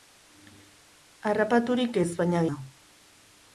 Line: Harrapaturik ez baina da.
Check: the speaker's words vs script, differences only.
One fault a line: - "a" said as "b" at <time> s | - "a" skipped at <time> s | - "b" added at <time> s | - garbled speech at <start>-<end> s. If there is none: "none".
none